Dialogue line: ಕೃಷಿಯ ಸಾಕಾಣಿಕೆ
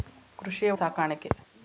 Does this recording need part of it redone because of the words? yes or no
no